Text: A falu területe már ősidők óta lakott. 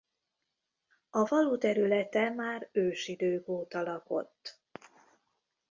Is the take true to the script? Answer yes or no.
yes